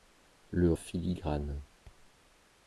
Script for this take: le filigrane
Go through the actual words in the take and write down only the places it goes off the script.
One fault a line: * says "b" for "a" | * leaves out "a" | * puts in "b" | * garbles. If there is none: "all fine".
all fine